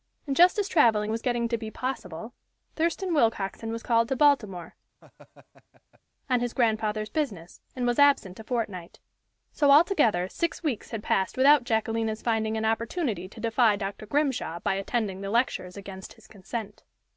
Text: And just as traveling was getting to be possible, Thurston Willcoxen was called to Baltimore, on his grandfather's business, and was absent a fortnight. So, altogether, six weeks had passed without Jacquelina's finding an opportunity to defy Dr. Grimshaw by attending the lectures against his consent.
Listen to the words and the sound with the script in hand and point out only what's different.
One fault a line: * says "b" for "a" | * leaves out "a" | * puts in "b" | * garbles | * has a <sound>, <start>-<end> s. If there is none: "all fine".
* has a laugh, 5.0-6.0 s